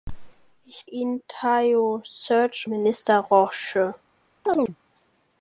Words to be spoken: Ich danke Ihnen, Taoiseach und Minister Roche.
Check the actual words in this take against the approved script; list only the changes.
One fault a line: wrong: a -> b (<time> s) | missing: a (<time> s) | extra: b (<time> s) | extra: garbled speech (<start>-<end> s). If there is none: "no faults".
missing: danke (0.9 s)
missing: und (2.7 s)